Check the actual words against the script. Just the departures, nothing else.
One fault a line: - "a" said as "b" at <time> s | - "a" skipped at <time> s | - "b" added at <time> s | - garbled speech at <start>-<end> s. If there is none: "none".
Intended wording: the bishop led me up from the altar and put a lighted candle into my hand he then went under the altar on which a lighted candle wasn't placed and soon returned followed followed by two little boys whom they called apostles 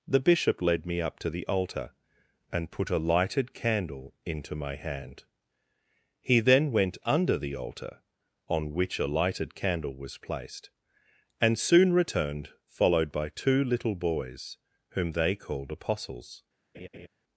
- "from" said as "to" at 1.2 s
- "wasn't" said as "was" at 10.0 s
- "followed" skipped at 13.1 s